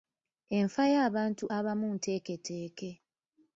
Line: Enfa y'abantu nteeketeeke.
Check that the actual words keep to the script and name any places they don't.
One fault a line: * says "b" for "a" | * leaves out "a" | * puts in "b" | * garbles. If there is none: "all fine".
* puts in "abamu"